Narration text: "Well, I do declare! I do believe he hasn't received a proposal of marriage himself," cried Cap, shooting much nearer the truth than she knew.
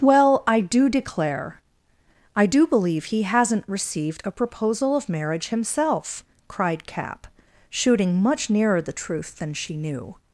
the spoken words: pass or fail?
pass